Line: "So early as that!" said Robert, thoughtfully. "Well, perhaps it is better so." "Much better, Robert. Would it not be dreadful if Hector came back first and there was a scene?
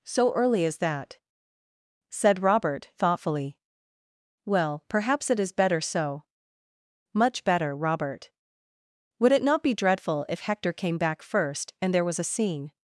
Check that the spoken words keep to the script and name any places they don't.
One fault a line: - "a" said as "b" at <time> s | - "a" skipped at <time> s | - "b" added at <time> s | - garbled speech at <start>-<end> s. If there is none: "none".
none